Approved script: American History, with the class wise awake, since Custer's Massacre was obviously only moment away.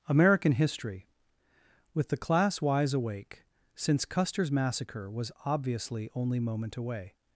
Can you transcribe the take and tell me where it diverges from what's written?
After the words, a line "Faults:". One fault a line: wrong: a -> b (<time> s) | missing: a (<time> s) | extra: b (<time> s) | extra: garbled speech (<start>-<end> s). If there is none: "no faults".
American History, with the class wise awake, since Custer's Massacre was obviously only moment away.
Faults:
no faults